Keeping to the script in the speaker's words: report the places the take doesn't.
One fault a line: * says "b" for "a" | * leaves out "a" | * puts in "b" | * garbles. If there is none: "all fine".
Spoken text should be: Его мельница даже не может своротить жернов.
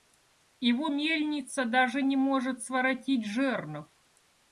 all fine